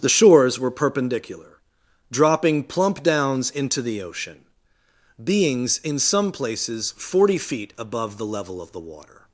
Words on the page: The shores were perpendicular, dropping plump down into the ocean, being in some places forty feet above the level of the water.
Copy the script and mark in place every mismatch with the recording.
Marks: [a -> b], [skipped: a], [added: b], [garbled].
The shores were perpendicular, dropping plump [down -> downs] into the ocean, [being -> beings] in some places forty feet above the level of the water.